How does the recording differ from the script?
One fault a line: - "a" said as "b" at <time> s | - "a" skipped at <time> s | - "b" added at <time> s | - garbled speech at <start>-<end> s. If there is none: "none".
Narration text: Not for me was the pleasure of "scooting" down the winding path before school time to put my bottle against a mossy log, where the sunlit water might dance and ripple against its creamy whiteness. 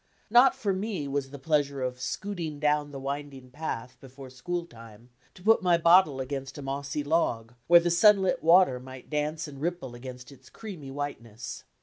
none